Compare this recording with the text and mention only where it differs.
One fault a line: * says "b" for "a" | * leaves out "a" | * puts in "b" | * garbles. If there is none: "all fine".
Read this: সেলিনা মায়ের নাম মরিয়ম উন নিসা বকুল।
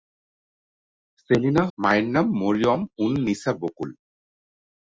all fine